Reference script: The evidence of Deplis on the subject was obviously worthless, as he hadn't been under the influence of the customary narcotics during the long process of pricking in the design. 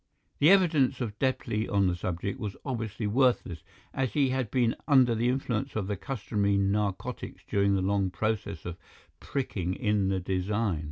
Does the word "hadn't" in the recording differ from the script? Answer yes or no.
yes